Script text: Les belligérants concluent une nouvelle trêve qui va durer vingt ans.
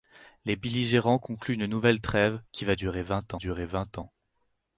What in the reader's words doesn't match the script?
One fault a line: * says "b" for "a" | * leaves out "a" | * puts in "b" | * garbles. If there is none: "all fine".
* puts in "durer vingt"